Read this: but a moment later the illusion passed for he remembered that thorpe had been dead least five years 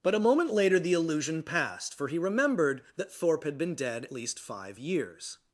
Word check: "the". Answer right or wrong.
right